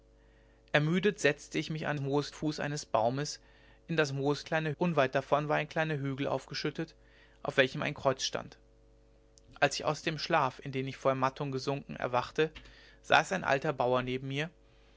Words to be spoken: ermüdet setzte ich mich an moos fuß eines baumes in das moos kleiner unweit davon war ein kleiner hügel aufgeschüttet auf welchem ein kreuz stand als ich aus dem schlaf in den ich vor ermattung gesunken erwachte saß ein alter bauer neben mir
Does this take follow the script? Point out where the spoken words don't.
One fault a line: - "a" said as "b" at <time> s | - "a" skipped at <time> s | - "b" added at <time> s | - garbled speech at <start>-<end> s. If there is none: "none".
none